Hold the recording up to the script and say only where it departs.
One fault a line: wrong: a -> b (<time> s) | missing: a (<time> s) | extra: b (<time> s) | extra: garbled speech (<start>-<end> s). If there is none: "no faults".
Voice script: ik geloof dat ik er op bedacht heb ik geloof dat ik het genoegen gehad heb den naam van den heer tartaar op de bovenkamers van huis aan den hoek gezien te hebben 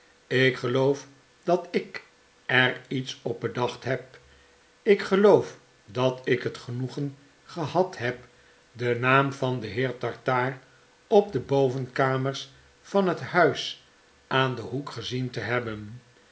extra: iets (2.9 s)
extra: het (13.1 s)